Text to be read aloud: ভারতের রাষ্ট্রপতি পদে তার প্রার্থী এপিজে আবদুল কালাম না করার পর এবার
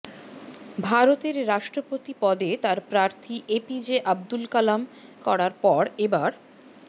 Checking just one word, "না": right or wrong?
wrong